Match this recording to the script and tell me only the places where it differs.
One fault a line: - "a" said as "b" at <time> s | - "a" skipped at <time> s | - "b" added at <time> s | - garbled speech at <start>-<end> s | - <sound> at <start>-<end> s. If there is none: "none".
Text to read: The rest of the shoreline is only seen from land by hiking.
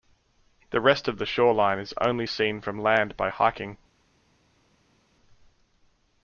none